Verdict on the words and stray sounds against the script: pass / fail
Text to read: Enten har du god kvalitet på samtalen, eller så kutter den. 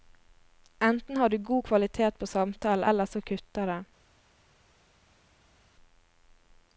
pass